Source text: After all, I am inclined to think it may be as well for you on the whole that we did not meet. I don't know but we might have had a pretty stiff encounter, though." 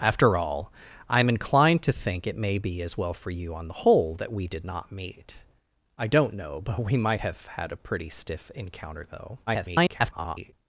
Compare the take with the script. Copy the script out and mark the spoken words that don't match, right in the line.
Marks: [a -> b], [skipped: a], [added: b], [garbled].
After all, I am inclined to think it may be as well for you on the whole that we did not meet. I don't know but we might have had a pretty stiff encounter, though." [garbled]